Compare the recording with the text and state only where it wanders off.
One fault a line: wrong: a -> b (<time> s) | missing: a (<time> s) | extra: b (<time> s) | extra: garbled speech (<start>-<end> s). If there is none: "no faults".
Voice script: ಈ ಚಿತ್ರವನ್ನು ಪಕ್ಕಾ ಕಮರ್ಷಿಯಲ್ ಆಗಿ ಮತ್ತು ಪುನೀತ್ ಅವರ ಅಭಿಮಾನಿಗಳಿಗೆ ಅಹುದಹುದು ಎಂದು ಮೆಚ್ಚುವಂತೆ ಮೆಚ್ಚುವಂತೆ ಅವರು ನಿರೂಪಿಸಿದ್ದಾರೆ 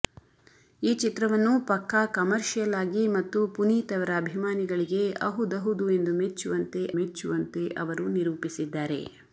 no faults